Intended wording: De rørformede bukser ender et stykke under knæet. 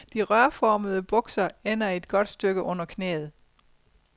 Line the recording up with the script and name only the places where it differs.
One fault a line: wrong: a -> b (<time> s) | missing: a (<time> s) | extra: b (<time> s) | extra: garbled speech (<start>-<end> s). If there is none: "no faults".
extra: godt (2.1 s)